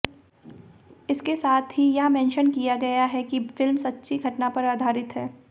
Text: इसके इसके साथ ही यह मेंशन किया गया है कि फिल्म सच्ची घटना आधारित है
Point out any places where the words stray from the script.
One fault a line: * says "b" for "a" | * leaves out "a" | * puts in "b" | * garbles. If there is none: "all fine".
* leaves out "इसके"
* puts in "पर"